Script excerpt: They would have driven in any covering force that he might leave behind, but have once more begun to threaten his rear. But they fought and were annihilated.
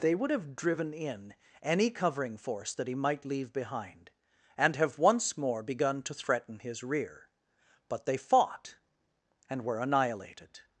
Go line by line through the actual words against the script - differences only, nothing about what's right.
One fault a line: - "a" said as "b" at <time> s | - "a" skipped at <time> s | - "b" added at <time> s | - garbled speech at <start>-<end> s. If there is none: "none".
- "but" said as "and" at 4.6 s